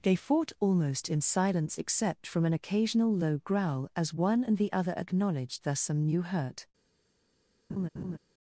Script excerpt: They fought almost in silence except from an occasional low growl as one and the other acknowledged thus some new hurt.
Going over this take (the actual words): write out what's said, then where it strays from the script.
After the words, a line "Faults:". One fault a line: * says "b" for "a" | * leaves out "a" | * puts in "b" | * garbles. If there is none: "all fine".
They fought almost in silence except from an occasional low growl as one and the other acknowledged thus some new hurt.
Faults:
all fine